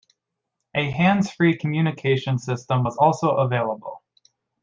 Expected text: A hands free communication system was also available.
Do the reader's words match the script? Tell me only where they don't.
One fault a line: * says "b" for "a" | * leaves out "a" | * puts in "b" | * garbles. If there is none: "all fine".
all fine